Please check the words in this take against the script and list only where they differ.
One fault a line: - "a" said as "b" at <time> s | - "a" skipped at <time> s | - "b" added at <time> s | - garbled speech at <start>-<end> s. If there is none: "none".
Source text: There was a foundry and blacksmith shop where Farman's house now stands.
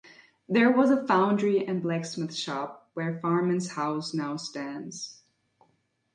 none